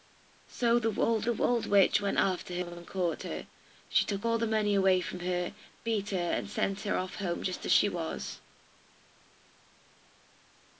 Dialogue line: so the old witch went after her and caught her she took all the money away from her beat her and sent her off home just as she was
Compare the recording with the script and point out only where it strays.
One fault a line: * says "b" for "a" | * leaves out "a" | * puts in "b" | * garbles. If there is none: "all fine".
* puts in "the old"